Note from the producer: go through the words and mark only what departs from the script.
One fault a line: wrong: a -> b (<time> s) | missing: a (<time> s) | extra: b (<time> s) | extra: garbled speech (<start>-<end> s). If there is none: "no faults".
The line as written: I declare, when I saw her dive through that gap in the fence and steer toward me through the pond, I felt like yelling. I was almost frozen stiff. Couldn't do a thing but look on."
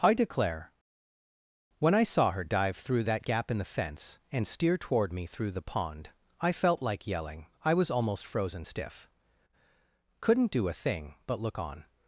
no faults